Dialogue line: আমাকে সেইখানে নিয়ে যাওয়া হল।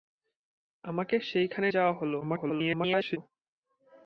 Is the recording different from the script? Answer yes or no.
yes